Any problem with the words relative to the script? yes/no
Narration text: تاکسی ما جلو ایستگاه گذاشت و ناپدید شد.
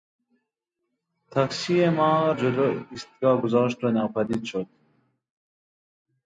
no